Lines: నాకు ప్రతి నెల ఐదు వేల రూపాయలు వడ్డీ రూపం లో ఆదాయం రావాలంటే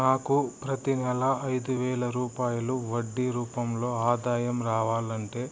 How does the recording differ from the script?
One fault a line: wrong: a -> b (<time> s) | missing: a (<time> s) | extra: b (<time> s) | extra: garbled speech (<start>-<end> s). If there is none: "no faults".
no faults